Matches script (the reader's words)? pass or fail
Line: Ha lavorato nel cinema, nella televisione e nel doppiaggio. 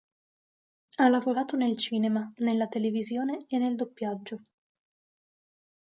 pass